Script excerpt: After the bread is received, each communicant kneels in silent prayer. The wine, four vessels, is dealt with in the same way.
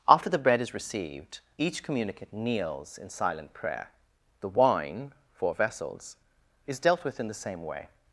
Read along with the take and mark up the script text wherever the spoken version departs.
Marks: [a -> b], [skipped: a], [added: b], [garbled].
After the bread is received, each communicant kneels in silent prayer. The wine, four vessels, is dealt with in the same way.